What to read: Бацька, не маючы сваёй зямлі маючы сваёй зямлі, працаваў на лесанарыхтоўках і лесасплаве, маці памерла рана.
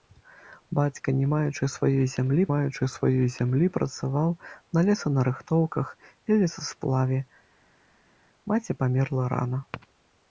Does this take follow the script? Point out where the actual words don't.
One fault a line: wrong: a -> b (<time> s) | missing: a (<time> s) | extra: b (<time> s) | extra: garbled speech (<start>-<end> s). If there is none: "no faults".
no faults